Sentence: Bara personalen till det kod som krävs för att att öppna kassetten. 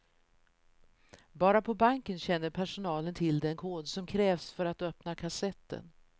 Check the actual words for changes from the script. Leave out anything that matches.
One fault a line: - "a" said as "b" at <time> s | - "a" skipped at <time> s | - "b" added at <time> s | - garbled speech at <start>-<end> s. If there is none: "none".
- "på banken känner" added at 1.6 s
- "det" said as "den" at 3.4 s
- "att" skipped at 4.8 s